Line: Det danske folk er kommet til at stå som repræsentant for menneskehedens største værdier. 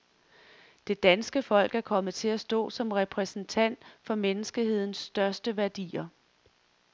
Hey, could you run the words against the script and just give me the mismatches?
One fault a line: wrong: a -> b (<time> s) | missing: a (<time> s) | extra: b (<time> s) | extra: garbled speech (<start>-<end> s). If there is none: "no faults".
no faults